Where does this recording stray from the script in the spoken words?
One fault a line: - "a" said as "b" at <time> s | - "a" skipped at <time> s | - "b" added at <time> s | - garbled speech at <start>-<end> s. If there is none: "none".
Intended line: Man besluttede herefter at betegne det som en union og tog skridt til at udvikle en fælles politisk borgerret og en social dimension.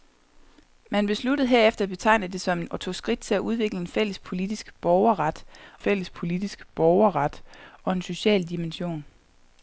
- "union" skipped at 2.7 s
- "fælles politisk borgerret" added at 5.8 s